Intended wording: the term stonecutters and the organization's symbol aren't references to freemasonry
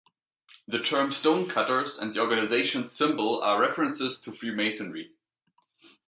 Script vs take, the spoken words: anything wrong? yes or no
yes